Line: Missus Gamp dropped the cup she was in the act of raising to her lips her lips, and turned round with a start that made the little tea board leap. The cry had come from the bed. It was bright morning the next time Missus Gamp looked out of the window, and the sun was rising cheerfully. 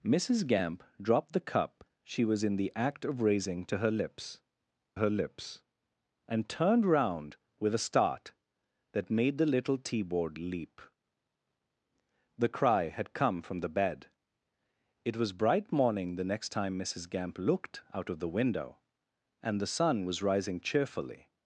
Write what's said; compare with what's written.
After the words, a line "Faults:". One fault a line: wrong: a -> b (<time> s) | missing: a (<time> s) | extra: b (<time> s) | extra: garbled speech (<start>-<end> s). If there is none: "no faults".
Missus Gamp dropped the cup she was in the act of raising to her lips her lips, and turned round with a start that made the little tea board leap. The cry had come from the bed. It was bright morning the next time Missus Gamp looked out of the window, and the sun was rising cheerfully.
Faults:
no faults